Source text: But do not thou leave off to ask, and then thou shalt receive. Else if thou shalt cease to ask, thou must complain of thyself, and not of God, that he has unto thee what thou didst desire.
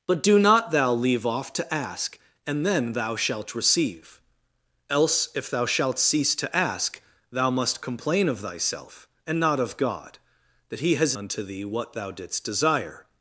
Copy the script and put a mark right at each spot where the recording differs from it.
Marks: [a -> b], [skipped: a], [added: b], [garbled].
But do not thou leave off to ask, and then thou shalt receive. Else if thou shalt cease to ask, thou must complain of thyself, and not of God, that he has unto thee what thou didst desire.